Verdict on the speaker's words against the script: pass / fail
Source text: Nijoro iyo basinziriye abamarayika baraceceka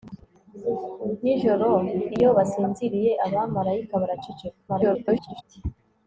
fail